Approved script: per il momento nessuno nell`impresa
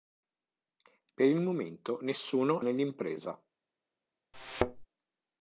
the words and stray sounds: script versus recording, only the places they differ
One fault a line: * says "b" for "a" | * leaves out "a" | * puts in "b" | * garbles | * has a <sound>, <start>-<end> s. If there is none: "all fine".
* has a thud, 4.3-4.9 s